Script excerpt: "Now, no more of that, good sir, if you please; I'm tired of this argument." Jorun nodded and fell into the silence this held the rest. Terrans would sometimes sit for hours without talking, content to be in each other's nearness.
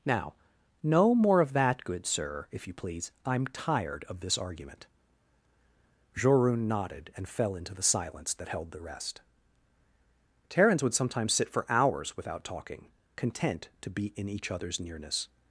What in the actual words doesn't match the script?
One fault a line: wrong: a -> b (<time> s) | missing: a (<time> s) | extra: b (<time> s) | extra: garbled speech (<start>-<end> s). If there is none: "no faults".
wrong: this -> that (8.3 s)